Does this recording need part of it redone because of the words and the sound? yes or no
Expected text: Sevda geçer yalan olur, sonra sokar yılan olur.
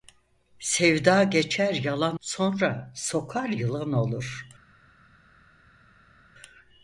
yes